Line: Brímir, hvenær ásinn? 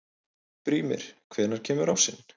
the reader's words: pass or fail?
fail